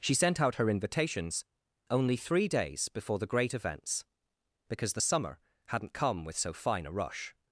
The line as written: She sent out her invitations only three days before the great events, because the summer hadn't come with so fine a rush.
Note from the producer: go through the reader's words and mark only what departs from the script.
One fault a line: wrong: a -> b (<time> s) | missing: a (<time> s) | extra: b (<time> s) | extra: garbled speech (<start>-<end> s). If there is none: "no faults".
no faults